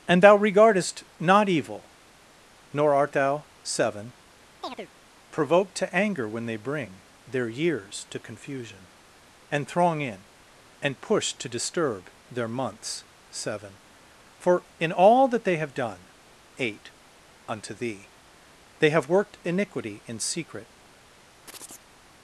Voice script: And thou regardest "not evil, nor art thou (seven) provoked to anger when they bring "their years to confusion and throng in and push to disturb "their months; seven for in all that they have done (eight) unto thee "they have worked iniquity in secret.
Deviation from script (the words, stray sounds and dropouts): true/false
true